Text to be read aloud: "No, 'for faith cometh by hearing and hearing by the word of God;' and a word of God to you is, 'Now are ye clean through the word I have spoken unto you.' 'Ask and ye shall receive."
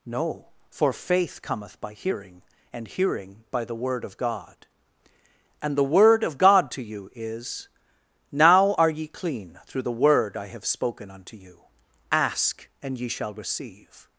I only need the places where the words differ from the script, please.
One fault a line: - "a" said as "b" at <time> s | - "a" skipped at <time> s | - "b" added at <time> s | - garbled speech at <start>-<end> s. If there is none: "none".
- "a" said as "the" at 5.8 s